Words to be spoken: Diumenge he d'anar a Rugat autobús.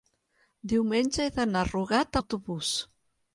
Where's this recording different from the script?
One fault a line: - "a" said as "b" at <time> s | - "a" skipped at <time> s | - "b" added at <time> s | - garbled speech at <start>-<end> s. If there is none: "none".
none